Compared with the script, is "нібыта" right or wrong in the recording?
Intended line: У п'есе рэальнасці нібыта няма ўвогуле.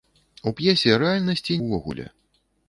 wrong